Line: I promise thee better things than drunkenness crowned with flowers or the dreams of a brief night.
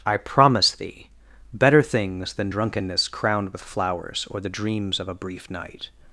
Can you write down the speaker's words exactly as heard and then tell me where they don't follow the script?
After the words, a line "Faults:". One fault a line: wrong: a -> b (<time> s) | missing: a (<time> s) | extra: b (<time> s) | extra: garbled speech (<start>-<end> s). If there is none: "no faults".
I promise thee better things than drunkenness crowned with flowers or the dreams of a brief night.
Faults:
no faults